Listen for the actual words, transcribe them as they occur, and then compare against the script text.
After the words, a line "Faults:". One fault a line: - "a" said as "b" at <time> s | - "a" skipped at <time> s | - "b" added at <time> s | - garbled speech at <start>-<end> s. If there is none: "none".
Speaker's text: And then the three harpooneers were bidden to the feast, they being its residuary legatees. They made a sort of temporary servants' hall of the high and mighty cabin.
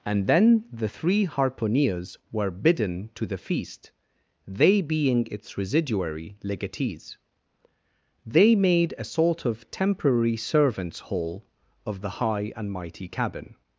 And then the three harpooneers were bidden to the feast, they being its residuary legatees. They made a sort of temporary servants' hall of the high and mighty cabin.
Faults:
none